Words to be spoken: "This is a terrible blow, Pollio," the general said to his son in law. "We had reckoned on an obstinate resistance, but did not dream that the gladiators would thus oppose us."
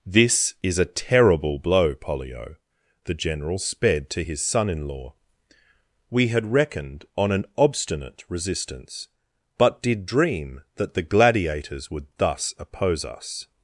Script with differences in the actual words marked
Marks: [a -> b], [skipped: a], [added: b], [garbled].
"This is a terrible blow, Pollio," the general [said -> sped] to his son in law. "We had reckoned on an obstinate resistance, but did [skipped: not] dream that the gladiators would thus oppose us."